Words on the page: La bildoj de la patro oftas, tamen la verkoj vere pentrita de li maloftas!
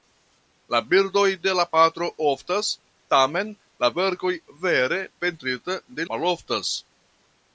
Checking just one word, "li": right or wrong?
wrong